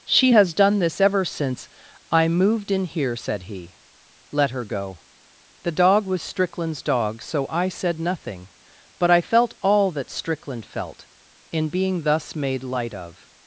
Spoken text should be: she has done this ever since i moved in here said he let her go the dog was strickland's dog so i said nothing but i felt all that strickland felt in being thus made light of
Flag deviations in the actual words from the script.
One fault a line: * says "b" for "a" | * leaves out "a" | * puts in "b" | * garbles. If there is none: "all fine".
all fine